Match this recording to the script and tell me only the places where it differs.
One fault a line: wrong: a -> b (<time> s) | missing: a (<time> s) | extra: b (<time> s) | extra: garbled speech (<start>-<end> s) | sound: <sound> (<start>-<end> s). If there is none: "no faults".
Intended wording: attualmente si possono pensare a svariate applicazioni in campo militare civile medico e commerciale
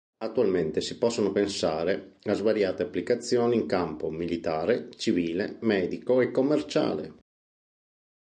no faults